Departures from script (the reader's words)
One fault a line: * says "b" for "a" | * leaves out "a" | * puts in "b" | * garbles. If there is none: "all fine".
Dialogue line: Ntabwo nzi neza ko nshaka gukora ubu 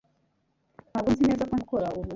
* leaves out "nshaka"